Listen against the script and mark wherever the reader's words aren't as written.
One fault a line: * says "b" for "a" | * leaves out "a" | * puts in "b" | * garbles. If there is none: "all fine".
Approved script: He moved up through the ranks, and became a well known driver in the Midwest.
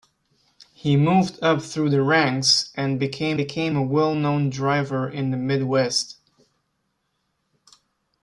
* puts in "became"